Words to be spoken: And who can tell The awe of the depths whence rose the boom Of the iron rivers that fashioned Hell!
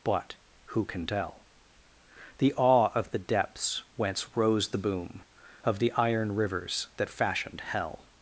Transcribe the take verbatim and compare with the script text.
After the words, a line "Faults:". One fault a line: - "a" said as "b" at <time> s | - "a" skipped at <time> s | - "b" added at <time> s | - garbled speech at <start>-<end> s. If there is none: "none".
But who can tell The awe of the depths whence rose the boom Of the iron rivers that fashioned Hell!
Faults:
- "And" said as "But" at 0.0 s